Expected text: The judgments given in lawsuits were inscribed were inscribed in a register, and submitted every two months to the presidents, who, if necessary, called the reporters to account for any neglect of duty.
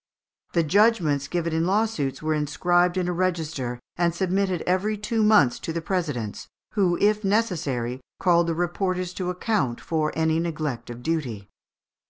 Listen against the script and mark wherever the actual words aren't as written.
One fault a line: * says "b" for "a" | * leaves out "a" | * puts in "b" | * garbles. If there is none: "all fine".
* leaves out "were inscribed"